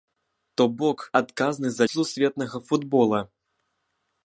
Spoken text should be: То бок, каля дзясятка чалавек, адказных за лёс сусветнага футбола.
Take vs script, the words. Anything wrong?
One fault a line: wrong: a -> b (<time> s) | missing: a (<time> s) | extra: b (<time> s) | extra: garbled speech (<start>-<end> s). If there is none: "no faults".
missing: каля дзясятка чалавек (1.0 s)
missing: лёс (1.8 s)